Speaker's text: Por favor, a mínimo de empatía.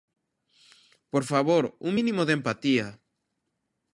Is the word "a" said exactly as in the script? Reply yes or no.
no